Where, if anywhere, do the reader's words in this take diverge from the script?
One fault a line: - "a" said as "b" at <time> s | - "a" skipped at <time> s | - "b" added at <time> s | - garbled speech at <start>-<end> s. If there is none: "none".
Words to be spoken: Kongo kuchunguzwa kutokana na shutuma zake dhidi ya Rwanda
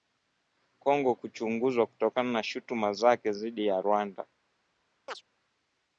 none